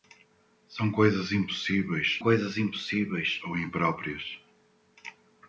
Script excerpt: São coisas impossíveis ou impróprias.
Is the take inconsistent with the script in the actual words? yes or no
yes